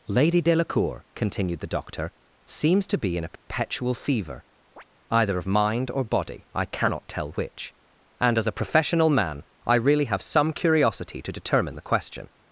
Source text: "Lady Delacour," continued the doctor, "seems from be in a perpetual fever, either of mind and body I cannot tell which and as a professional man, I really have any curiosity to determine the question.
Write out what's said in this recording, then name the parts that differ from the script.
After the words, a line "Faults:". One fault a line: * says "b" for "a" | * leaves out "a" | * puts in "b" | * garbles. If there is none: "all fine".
"Lady Delacour," continued the doctor, "seems to be in a perpetual fever, either of mind or body I cannot tell which and as a professional man, I really have some curiosity to determine the question.
Faults:
* says "to" for "from"
* says "or" for "and"
* says "some" for "any"